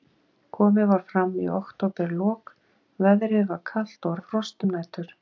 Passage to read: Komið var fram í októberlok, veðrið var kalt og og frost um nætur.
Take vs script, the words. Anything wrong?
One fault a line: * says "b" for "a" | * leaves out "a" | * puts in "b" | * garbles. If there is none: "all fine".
all fine